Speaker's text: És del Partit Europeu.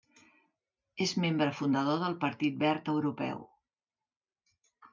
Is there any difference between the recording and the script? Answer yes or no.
yes